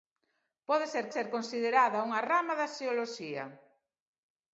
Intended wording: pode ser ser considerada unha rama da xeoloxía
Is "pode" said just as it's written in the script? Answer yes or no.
yes